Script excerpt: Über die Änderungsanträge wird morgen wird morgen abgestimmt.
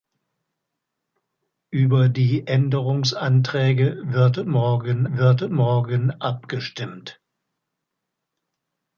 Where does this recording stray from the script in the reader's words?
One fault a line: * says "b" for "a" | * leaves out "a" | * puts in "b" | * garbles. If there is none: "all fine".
all fine